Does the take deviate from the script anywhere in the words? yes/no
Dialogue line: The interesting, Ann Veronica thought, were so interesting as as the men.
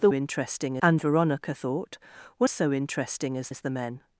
no